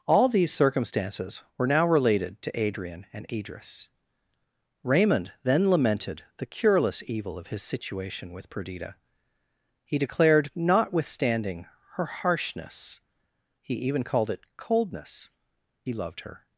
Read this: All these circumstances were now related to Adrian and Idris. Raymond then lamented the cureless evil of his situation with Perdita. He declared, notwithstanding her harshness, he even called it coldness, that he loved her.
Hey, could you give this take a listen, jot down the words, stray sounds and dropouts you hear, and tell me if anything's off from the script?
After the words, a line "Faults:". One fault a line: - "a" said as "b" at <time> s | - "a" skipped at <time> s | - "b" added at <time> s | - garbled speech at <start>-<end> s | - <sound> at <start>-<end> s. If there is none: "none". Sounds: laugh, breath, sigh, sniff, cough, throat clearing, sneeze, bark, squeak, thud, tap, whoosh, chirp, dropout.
All these circumstances were now related to Adrian and Idris. Raymond then lamented the cureless evil of his situation with Perdita. He declared, notwithstanding her harshness, he even called it coldness, he loved her.
Faults:
- "that" skipped at 15.3 s